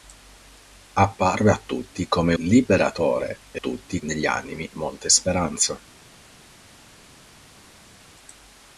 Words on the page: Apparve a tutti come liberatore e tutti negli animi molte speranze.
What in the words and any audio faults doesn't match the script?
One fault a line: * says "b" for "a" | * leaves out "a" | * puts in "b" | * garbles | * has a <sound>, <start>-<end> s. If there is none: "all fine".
all fine